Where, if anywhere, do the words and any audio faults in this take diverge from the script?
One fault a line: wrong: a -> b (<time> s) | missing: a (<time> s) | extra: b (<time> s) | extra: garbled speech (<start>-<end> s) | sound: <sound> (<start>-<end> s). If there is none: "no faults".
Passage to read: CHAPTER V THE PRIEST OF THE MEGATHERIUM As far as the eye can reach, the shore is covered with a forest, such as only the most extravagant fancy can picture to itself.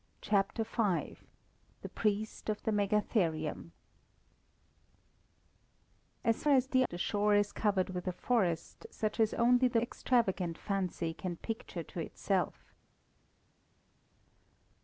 missing: far (6.4 s)
missing: eye can reach (6.8 s)
missing: most (9.8 s)